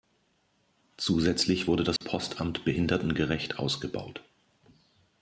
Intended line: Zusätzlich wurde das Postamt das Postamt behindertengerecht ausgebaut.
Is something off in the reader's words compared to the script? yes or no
yes